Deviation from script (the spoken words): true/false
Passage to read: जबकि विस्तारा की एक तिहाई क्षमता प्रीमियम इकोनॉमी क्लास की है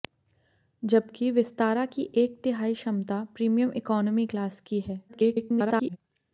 true